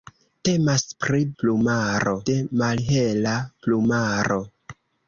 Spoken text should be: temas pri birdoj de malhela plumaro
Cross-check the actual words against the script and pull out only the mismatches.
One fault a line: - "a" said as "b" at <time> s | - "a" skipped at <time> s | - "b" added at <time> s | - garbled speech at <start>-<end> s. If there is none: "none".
- "birdoj" said as "plumaro" at 1.4 s